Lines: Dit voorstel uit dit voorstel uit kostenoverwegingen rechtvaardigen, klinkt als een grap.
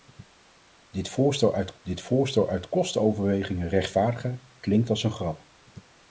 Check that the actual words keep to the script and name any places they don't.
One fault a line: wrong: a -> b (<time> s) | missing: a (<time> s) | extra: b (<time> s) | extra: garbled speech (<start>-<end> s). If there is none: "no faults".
no faults